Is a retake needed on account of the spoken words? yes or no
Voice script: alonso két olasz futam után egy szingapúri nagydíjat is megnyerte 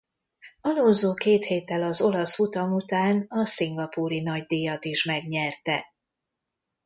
yes